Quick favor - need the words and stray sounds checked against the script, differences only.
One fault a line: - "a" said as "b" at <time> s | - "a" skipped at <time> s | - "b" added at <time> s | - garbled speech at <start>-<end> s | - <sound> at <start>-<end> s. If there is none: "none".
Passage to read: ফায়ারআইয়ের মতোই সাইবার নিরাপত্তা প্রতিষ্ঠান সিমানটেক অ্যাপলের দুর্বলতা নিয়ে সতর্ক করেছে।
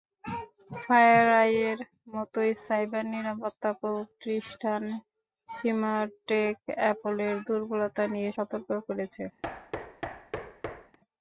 - thud at 9.4-11.0 s